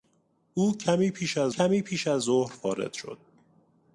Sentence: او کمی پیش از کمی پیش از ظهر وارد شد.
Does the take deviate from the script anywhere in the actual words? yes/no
no